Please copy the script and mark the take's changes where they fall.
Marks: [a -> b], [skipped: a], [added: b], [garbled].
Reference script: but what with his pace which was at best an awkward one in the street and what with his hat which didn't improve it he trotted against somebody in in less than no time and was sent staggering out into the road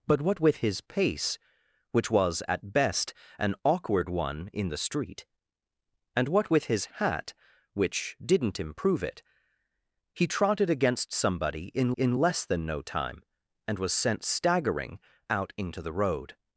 but what with his pace which was at best an awkward one in the street and what with his hat which didn't improve it he trotted against somebody in in less than no time and was sent staggering out into the road